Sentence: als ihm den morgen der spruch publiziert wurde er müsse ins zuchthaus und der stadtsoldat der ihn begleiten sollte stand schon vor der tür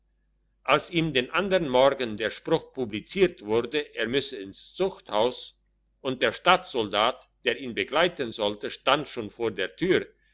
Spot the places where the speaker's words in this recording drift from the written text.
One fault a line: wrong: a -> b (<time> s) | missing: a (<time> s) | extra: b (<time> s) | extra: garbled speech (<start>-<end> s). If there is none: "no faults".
extra: andern (1.3 s)